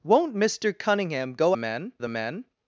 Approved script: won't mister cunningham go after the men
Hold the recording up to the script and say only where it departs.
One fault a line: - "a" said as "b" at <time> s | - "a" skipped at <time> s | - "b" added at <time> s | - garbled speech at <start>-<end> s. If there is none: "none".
- "after" said as "men" at 1.5 s